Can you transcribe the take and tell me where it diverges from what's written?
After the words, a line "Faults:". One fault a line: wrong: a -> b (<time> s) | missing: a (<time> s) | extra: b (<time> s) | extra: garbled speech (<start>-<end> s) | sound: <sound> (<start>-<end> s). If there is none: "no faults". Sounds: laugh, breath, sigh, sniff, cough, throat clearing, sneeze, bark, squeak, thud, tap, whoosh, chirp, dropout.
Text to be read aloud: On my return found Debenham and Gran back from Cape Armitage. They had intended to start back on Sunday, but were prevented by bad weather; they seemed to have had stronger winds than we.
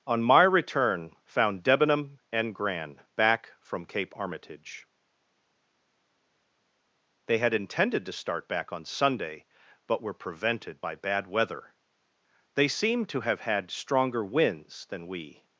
On my return found Debenham and Gran back from Cape Armitage. They had intended to start back on Sunday, but were prevented by bad weather; they seemed to have had stronger winds than we.
Faults:
no faults